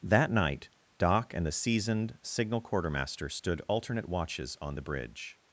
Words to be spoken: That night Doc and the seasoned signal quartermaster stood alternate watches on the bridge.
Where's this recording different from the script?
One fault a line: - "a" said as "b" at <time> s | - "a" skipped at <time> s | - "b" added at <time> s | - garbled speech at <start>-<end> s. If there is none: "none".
none